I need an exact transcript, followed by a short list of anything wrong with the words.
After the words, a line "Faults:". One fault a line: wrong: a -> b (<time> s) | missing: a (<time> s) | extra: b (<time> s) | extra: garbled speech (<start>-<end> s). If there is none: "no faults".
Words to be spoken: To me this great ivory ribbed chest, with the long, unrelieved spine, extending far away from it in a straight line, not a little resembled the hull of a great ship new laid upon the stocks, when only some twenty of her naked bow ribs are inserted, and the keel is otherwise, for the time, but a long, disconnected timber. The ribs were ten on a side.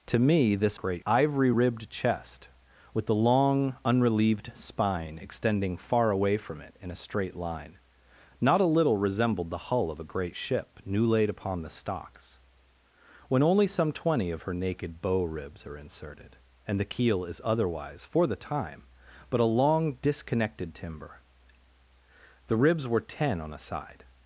To me this great ivory ribbed chest, with the long, unrelieved spine, extending far away from it in a straight line, not a little resembled the hull of a great ship new laid upon the stocks, when only some twenty of her naked bow ribs are inserted, and the keel is otherwise, for the time, but a long, disconnected timber. The ribs were ten on a side.
Faults:
no faults